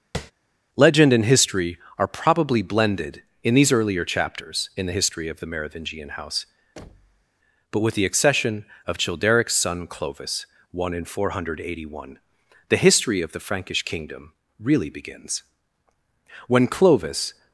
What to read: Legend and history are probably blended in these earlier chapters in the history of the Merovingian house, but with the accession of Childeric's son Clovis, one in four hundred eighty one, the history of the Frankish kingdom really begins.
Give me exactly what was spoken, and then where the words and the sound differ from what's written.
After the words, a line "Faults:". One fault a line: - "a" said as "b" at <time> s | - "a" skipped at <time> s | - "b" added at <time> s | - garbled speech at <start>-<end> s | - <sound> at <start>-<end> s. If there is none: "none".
Legend and history are probably blended in these earlier chapters in the history of the Merovingian house, but with the accession of Childeric's son Clovis, one in four hundred eighty one, the history of the Frankish kingdom really begins. When Clovis
Faults:
- tap at 0.1-0.3 s
- thud at 6.8-7.3 s
- "When Clovis" added at 16.5 s